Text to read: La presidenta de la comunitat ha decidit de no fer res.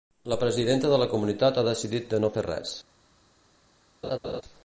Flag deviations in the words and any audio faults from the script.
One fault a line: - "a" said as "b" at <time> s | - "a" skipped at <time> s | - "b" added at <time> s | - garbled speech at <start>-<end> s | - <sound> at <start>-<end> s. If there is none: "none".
- laugh at 4.0-4.4 s